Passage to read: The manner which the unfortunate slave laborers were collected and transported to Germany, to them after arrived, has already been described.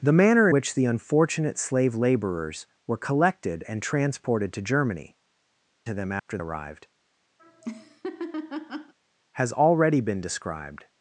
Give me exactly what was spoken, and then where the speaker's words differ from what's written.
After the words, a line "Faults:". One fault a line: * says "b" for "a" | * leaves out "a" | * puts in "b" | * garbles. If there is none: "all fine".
The manner which the unfortunate slave laborers were collected and transported to Germany, to them after arrived, has already been described.
Faults:
all fine